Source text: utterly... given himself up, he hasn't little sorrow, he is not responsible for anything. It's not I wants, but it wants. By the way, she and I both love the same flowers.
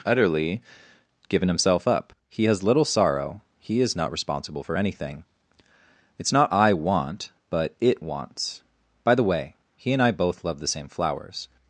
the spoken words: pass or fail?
fail